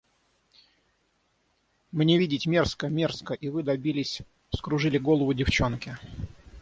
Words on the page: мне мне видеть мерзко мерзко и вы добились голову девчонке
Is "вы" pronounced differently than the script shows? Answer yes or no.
no